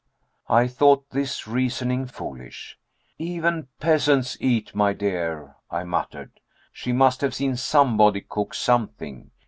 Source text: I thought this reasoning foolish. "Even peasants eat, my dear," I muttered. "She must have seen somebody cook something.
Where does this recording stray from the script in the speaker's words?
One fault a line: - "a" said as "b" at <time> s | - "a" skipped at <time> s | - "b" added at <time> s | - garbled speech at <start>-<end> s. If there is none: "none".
none